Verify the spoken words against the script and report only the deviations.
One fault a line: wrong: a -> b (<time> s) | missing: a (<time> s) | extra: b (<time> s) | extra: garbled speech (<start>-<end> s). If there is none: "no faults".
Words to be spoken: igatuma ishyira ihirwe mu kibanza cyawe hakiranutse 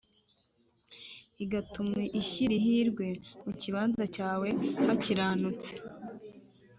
no faults